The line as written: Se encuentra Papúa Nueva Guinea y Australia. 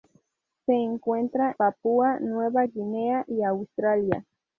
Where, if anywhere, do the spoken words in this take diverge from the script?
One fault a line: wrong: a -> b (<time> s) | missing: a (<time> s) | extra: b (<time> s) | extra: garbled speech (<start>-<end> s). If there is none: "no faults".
no faults